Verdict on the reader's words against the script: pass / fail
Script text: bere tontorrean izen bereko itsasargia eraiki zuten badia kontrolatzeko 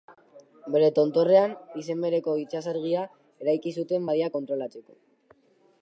pass